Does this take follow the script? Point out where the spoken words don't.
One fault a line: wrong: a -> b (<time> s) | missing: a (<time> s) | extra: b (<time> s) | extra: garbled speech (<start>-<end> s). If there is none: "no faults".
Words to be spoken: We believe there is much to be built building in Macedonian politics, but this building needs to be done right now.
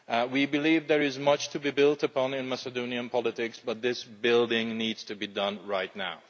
wrong: building -> upon (2.0 s)